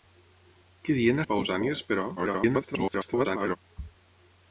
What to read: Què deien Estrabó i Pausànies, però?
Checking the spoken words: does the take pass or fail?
fail